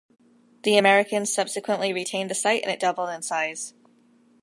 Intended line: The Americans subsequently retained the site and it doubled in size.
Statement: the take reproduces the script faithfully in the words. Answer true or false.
true